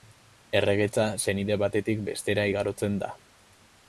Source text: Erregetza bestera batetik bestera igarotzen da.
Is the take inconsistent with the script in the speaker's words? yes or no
yes